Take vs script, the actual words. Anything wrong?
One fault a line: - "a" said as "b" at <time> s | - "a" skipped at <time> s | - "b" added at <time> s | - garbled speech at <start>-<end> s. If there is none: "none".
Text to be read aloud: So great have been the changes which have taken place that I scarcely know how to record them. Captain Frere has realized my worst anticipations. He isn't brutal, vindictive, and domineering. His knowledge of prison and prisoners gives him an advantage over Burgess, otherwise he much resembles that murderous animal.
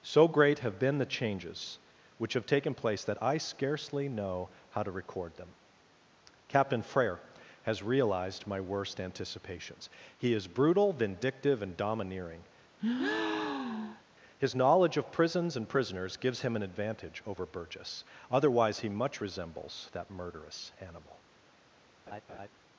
- "isn't" said as "is" at 10.3 s
- "prison" said as "prisons" at 15.1 s